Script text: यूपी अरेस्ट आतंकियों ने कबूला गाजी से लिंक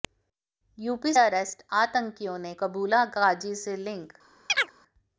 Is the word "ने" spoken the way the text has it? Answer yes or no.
yes